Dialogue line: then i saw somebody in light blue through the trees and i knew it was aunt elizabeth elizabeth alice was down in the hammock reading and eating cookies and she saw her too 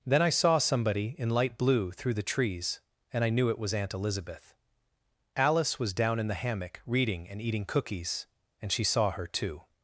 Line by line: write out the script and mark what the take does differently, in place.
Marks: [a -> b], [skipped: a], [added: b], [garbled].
then i saw somebody in light blue through the trees and i knew it was aunt elizabeth [skipped: elizabeth] alice was down in the hammock reading and eating cookies and she saw her too